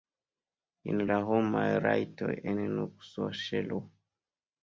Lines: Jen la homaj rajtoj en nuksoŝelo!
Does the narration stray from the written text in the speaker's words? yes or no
no